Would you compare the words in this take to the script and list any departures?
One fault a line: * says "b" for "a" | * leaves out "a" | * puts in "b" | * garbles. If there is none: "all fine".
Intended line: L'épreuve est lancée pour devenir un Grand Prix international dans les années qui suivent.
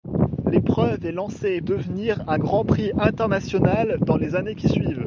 * leaves out "pour"